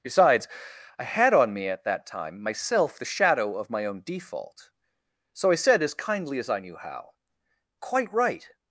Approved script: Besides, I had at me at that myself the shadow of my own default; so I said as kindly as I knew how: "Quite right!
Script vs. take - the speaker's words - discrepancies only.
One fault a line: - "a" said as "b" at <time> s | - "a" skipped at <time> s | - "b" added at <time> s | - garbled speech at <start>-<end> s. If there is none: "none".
- "at" said as "on" at 1.3 s
- "time" added at 2.0 s